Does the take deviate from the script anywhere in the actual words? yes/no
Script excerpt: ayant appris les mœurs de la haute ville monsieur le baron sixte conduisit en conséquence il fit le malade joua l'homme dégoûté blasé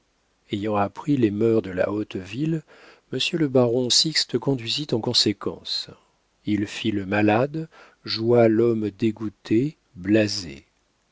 no